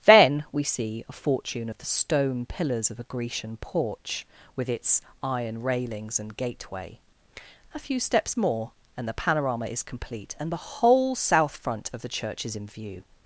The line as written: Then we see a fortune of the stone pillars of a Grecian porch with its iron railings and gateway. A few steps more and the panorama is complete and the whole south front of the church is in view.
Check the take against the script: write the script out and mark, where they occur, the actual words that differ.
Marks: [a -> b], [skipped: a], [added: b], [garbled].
Then we see a fortune of the stone pillars of a Grecian porch with its iron railings and gateway. A few steps more and the panorama is complete and the whole south front of the church is in view.